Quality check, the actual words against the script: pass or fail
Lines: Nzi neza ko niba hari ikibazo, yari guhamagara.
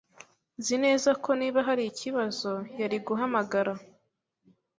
pass